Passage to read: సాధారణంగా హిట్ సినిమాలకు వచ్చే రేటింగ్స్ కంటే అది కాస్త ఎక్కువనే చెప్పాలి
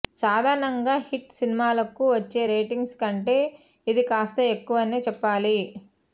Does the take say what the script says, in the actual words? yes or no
no